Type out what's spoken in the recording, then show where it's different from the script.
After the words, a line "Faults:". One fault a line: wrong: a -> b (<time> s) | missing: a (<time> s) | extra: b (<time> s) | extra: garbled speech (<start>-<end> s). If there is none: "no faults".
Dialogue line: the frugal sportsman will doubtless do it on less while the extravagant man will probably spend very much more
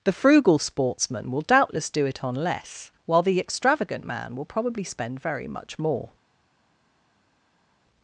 the frugal sportsman will doubtless do it on less while the extravagant man will probably spend very much more
Faults:
no faults